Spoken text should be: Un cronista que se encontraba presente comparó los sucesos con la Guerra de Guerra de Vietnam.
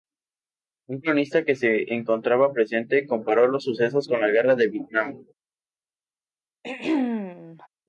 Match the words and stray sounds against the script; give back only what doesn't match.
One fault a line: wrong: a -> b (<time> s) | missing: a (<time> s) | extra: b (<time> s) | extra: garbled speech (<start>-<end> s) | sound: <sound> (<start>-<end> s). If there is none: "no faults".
missing: Guerra de (4.7 s)
sound: throat clearing (6.6-7.7 s)